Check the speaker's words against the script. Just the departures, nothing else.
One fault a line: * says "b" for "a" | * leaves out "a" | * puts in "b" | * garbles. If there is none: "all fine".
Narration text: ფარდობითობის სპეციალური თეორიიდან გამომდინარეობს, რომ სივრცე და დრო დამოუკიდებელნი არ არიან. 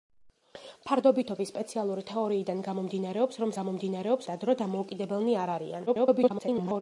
* says "გამომდინარეობს" for "სივრცე"
* garbles